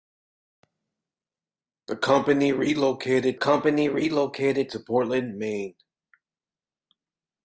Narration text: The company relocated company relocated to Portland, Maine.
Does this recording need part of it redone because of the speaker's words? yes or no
no